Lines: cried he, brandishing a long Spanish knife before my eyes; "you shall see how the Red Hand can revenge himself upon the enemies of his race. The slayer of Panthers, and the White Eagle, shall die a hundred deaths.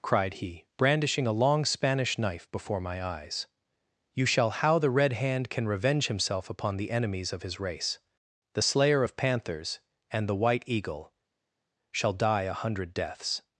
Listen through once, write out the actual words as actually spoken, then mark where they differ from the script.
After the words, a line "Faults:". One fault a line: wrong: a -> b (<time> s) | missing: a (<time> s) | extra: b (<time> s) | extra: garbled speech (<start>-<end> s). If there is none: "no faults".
cried he, brandishing a long Spanish knife before my eyes; "you shall how the Red Hand can revenge himself upon the enemies of his race. The slayer of Panthers, and the White Eagle, shall die a hundred deaths.
Faults:
missing: see (4.5 s)